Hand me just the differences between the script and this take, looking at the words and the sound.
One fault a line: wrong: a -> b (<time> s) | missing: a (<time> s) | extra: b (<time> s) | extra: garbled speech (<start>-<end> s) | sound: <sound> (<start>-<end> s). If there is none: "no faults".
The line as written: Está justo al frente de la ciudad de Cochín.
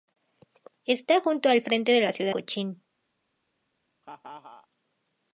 missing: de (2.3 s)
sound: laugh (4.0-4.7 s)